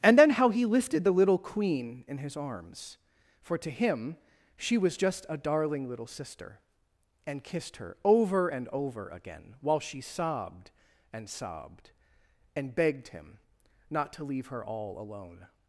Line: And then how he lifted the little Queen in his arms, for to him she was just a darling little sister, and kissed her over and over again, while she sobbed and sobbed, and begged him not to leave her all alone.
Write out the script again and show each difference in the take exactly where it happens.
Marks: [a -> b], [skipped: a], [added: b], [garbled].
And then how he lifted the little Queen in his arms, for to him she was just a darling little sister, and kissed her over and over again, while she sobbed and sobbed, and begged him not to leave her all alone.